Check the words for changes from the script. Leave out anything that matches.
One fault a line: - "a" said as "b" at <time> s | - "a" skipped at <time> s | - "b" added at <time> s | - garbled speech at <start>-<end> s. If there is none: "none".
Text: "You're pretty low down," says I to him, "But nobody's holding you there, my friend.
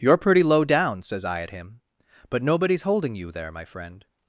- "to" said as "at" at 1.4 s